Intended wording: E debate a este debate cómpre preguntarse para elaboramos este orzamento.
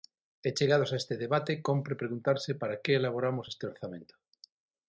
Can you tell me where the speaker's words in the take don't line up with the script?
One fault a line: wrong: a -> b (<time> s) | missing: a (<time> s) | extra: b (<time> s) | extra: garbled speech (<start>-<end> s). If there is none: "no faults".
wrong: debate -> chegados (0.6 s)
extra: que (2.8 s)